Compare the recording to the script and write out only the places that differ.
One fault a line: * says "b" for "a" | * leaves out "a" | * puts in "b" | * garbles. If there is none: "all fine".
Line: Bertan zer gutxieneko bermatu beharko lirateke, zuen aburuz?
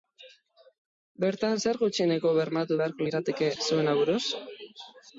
all fine